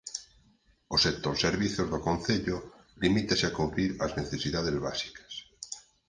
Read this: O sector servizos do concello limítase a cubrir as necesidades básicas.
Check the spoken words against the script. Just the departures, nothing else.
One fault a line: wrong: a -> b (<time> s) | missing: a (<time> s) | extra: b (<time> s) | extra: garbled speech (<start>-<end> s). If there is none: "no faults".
no faults